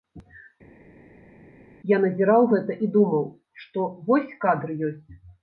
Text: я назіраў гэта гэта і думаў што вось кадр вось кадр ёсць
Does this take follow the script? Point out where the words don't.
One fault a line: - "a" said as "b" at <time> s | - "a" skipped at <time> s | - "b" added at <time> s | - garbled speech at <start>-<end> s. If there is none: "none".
- "гэта" skipped at 2.8 s
- "вось кадр" skipped at 4.8 s